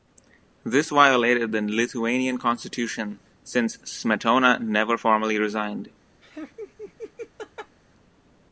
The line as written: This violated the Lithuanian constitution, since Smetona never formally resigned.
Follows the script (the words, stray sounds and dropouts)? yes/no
no